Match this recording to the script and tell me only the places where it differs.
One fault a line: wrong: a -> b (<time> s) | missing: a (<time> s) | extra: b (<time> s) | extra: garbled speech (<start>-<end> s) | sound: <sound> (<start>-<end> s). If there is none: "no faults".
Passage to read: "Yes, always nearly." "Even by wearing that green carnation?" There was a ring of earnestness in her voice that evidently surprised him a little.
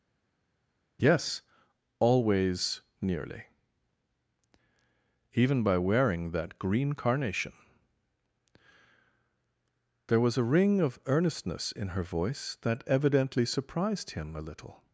no faults